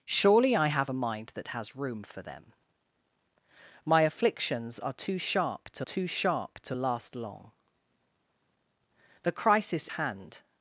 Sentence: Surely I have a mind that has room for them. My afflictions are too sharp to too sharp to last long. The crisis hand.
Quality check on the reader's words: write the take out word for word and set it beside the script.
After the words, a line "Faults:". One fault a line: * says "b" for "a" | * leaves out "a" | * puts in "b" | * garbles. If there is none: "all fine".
Surely I have a mind that has room for them. My afflictions are too sharp to too sharp to last long. The crisis hand.
Faults:
all fine